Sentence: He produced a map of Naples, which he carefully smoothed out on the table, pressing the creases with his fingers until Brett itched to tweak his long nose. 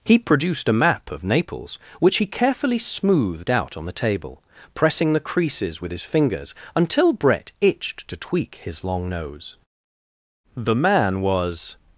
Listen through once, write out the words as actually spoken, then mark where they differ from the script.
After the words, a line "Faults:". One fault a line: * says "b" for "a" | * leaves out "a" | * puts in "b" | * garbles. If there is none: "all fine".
He produced a map of Naples, which he carefully smoothed out on the table, pressing the creases with his fingers until Brett itched to tweak his long nose. The man was
Faults:
* puts in "The man was"